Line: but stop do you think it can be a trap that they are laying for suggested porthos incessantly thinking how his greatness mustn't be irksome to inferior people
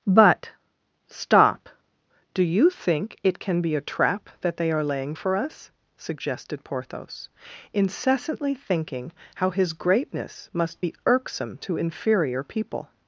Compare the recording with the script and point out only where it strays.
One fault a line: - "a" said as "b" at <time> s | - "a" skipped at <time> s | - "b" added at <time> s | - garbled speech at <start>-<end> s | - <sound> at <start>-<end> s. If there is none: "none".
- "us" added at 5.3 s
- "mustn't" said as "must" at 10.5 s